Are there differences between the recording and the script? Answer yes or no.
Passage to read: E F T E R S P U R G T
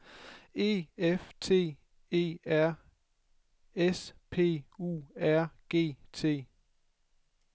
no